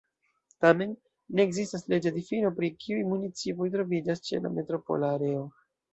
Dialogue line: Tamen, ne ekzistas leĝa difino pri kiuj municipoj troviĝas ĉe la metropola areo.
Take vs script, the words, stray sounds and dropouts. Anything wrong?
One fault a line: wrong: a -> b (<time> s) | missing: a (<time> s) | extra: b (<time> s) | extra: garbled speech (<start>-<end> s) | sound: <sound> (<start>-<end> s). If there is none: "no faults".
no faults